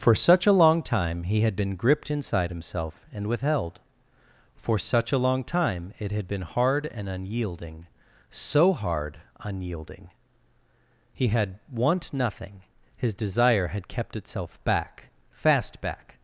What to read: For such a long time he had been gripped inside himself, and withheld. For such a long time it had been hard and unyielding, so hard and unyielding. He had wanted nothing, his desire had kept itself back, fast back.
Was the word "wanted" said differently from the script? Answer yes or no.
yes